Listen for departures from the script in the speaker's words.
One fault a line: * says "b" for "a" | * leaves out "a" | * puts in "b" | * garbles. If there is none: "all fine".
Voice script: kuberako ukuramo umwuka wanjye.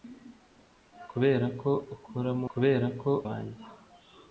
* says "kuberako" for "umwuka"